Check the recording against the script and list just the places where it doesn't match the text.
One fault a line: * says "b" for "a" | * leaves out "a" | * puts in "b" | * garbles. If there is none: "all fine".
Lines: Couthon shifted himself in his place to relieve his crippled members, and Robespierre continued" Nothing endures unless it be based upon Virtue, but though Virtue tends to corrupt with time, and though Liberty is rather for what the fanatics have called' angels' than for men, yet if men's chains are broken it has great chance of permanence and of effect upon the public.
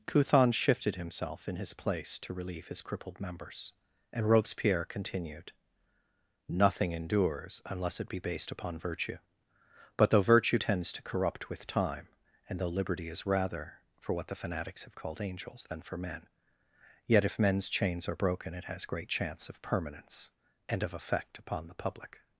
all fine